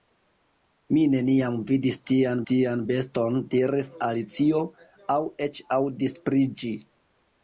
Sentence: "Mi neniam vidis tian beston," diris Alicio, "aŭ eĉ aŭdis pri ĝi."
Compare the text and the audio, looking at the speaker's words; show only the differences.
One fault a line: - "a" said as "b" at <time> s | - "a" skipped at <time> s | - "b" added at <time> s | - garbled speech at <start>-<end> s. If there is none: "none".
- "tian" added at 2.5 s